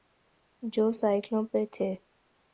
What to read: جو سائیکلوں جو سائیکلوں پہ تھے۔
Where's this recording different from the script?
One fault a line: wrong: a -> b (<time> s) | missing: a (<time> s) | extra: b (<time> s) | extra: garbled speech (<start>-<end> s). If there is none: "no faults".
missing: جو سائیکلوں (1.4 s)